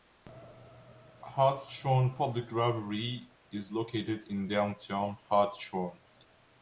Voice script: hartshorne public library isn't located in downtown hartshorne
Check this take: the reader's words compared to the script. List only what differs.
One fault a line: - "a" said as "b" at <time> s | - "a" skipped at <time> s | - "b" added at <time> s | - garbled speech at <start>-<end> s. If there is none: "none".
- "isn't" said as "is" at 3.5 s